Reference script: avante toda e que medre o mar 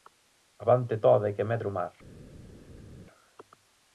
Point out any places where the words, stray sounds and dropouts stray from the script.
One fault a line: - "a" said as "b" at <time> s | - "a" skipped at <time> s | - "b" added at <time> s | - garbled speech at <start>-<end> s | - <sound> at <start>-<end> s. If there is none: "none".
none